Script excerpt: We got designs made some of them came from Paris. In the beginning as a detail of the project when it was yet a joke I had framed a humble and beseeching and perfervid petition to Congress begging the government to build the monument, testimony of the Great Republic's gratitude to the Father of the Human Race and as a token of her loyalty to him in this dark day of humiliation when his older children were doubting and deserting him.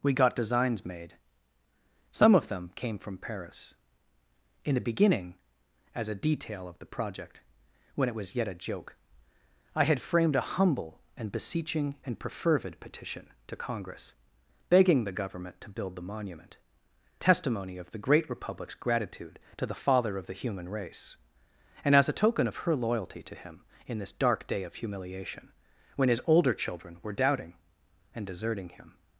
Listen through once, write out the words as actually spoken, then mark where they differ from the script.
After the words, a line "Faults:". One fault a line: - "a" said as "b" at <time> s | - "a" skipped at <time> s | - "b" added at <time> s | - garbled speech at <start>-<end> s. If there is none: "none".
We got designs made some of them came from Paris. In the beginning as a detail of the project when it was yet a joke I had framed a humble and beseeching and perfervid petition to Congress begging the government to build the monument, testimony of the Great Republic's gratitude to the Father of the Human Race and as a token of her loyalty to him in this dark day of humiliation when his older children were doubting and deserting him.
Faults:
none